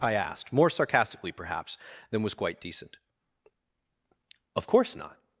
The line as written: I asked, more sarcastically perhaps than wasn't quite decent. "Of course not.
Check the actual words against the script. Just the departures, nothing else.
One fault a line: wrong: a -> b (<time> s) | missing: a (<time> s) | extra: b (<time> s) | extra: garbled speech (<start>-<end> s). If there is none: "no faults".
wrong: wasn't -> was (2.2 s)